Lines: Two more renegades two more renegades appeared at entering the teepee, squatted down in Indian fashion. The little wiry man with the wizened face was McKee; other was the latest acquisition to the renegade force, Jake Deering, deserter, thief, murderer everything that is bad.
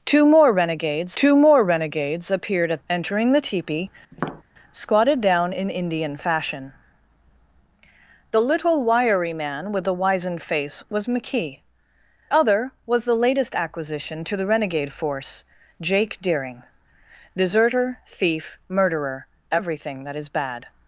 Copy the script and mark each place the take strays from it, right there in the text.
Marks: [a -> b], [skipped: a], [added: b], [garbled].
Two more renegades two more renegades appeared at entering the teepee, squatted down in Indian fashion. The little wiry man with the wizened face was McKee; other was the latest acquisition to the renegade force, Jake Deering, deserter, thief, murderer everything that is bad.